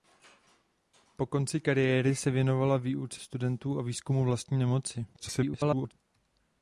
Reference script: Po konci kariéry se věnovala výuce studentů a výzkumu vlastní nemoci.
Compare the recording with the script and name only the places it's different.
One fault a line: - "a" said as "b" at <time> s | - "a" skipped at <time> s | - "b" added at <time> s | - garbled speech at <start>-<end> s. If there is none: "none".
- garbled speech at 5.1-5.9 s